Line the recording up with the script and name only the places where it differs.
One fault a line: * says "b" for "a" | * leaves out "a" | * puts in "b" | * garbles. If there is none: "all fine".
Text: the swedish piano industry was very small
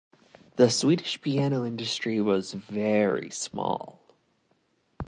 all fine